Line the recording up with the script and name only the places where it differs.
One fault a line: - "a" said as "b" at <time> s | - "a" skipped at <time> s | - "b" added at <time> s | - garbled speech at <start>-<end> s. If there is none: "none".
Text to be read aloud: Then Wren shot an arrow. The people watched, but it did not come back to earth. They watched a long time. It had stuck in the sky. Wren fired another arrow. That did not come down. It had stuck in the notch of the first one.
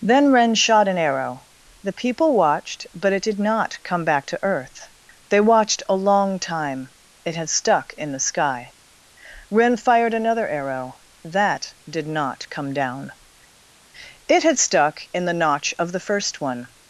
none